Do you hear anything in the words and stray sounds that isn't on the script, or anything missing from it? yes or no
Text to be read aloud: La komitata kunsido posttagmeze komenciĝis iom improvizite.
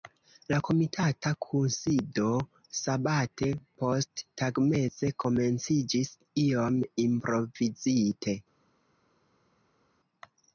yes